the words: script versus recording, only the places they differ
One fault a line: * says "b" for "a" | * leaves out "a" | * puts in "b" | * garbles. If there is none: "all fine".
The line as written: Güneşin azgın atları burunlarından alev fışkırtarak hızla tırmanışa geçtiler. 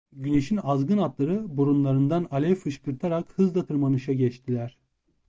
all fine